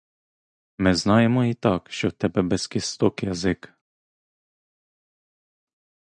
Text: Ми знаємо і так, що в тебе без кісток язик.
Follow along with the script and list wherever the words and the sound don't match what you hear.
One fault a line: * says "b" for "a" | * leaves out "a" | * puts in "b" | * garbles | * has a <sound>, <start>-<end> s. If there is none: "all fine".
all fine